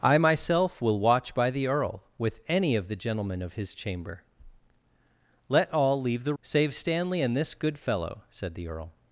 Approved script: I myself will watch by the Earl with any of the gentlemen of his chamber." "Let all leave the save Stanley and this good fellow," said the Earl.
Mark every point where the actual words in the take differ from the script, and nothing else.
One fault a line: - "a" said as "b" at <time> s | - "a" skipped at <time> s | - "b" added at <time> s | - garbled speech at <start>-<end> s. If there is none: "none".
none